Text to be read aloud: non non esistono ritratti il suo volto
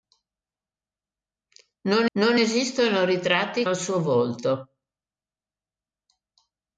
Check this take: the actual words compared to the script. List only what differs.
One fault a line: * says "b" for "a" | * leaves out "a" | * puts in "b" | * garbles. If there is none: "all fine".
all fine